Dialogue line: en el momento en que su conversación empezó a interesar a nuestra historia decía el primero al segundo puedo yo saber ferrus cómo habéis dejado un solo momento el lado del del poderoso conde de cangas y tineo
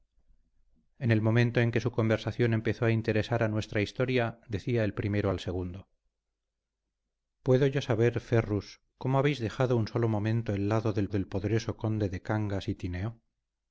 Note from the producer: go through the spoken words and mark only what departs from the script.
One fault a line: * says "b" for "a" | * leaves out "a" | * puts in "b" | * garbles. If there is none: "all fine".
all fine